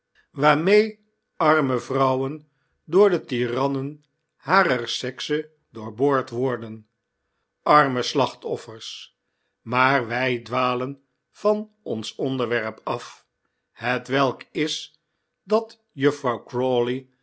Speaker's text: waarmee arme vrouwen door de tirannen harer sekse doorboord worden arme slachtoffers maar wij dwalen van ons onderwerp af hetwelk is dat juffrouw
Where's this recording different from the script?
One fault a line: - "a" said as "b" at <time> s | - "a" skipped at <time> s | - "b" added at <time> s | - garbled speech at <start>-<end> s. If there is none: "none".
none